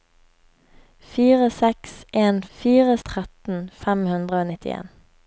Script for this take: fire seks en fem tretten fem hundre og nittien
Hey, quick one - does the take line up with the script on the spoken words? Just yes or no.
no